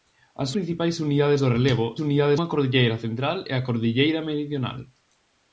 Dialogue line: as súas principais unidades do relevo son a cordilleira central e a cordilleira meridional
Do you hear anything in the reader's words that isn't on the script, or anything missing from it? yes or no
yes